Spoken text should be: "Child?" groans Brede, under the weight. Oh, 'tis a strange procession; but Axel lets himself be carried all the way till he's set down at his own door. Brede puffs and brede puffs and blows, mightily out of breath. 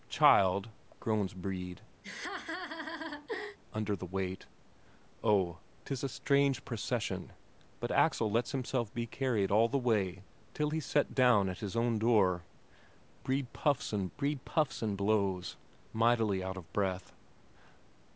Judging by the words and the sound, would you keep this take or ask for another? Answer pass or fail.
fail